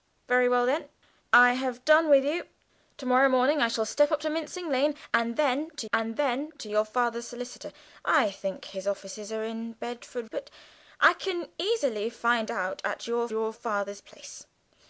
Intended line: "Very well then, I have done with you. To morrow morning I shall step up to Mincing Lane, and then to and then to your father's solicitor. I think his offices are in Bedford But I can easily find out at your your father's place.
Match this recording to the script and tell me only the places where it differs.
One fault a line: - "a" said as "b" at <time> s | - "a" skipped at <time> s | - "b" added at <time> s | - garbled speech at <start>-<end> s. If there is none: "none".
none